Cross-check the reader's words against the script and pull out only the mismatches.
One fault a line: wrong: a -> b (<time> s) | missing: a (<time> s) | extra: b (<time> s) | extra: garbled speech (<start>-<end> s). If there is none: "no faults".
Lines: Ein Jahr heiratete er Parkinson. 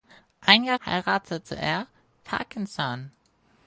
no faults